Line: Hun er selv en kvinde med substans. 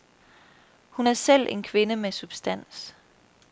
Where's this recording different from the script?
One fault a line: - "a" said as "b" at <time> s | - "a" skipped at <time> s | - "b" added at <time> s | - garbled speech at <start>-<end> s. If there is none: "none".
none